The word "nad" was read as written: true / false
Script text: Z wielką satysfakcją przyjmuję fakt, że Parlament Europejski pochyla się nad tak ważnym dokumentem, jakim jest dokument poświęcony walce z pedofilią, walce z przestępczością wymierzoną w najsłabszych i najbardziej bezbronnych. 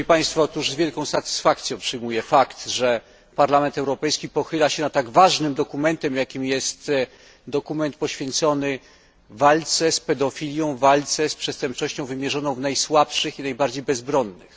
true